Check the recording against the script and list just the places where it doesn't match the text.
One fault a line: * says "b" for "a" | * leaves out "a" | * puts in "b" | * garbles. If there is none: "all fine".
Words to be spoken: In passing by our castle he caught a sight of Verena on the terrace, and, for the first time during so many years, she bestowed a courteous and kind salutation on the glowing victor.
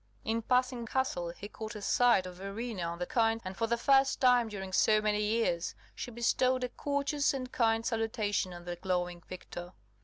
* leaves out "by our"
* says "kind" for "terrace"